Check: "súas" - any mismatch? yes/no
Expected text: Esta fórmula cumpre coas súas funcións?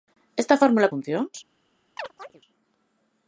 yes